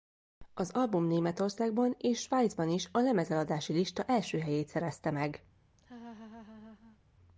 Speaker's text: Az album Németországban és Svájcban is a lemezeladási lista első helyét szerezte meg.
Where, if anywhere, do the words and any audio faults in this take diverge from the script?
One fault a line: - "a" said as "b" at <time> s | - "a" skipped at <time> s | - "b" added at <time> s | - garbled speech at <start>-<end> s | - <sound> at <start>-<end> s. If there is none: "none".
- laugh at 5.8-7.0 s